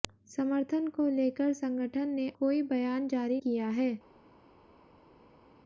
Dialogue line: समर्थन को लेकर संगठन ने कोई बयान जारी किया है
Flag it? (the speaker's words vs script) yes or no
no